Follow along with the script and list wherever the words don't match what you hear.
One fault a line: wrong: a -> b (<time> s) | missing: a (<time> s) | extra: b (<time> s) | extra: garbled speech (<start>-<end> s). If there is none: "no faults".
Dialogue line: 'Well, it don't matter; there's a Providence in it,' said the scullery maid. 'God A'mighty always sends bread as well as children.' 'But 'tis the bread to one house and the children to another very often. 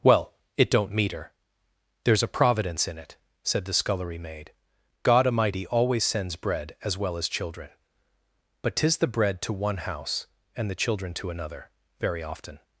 wrong: matter -> meter (0.9 s)